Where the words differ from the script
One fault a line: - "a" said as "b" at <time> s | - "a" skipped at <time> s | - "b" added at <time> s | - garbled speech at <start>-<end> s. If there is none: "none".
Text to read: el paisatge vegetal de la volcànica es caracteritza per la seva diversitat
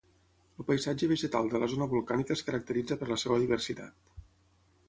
- "zona" added at 1.8 s